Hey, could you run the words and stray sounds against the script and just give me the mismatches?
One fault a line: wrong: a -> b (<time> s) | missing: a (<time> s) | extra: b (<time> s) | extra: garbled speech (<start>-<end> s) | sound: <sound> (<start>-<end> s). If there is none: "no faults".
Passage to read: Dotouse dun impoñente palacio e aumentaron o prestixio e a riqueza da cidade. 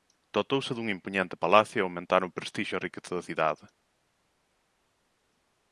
no faults